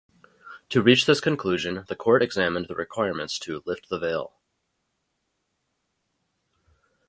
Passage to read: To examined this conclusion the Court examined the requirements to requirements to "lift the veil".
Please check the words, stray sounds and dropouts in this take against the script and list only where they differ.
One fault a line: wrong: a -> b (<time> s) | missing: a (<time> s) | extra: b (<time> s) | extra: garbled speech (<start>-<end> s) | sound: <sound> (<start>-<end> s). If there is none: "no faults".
wrong: examined -> reach (0.8 s)
missing: requirements to (3.6 s)